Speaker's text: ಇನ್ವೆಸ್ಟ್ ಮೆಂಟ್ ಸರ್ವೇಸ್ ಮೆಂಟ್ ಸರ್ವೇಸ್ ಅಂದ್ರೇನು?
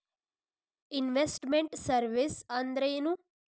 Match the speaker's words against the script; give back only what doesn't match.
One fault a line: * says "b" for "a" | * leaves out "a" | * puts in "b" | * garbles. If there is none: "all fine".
* leaves out "ಮೆಂಟ್ ಸರ್ವೇಸ್"